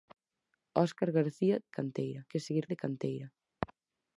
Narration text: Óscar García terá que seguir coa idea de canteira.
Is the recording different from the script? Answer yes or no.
yes